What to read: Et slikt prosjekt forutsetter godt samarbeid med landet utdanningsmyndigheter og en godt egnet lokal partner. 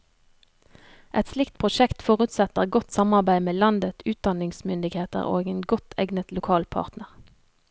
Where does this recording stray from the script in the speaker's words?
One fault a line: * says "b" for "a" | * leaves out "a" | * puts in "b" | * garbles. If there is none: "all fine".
all fine